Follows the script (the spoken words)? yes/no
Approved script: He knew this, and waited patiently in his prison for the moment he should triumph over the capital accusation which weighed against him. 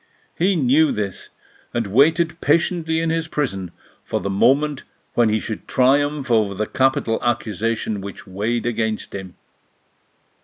no